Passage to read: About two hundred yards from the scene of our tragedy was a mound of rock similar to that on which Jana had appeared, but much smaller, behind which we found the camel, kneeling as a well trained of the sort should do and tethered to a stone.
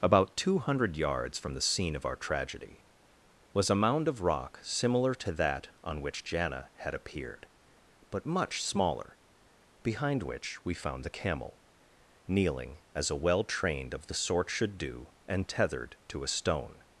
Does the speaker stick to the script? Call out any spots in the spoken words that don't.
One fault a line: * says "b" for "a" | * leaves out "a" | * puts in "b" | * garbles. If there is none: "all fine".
all fine